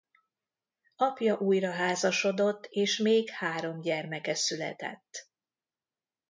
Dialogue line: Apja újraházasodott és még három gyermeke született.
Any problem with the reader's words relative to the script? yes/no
no